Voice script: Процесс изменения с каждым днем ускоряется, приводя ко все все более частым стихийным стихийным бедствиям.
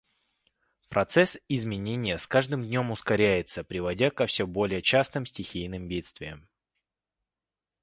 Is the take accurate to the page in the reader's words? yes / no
no